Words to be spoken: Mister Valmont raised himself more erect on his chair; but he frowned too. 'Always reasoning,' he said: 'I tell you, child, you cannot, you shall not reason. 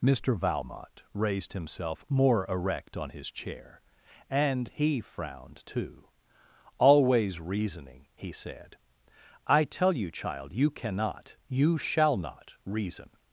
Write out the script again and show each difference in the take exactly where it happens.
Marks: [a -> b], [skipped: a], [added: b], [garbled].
Mister Valmont raised himself more erect on his chair; [but -> and] he frowned too. 'Always reasoning,' he said: 'I tell you, child, you cannot, you shall not reason.